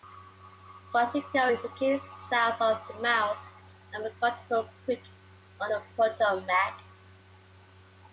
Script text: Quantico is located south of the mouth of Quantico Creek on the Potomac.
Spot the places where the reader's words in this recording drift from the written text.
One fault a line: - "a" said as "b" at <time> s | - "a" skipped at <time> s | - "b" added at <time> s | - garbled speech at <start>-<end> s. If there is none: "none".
none